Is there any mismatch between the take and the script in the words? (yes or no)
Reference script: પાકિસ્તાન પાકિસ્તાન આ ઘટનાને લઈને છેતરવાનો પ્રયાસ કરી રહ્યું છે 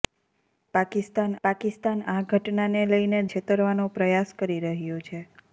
no